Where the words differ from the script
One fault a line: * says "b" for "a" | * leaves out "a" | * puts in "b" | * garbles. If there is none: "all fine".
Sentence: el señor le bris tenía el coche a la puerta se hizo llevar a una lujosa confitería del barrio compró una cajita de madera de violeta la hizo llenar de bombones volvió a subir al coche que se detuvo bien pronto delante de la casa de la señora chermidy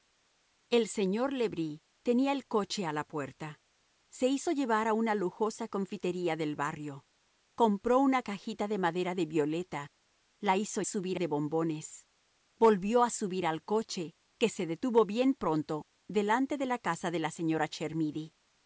* says "subir" for "llenar"